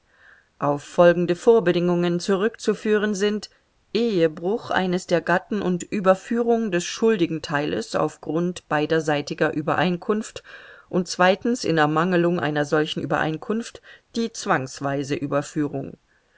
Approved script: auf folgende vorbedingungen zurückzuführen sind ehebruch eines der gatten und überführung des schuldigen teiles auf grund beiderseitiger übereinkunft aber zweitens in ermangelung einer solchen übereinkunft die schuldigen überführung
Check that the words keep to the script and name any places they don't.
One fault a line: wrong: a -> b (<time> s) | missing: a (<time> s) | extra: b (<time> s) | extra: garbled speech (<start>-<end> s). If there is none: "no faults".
wrong: aber -> und (10.9 s)
wrong: schuldigen -> zwangsweise (14.3 s)